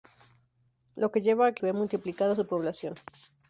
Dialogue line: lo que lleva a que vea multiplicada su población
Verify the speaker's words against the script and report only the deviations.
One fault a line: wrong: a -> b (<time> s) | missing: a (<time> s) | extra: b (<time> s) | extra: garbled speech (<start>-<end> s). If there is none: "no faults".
no faults